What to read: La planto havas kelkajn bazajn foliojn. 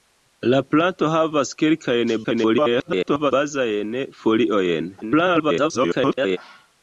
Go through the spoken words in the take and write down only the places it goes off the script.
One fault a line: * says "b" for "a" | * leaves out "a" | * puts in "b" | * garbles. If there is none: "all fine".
* garbles
* garbles